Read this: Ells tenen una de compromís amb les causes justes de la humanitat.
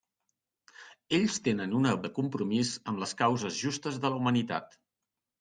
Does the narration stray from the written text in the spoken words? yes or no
no